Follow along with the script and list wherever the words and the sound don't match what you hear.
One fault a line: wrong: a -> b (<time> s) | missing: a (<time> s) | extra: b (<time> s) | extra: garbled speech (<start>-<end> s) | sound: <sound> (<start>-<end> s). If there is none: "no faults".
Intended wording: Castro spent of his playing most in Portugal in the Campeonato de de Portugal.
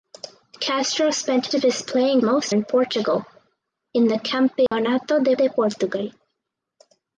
sound: dropout (4.7-4.7 s)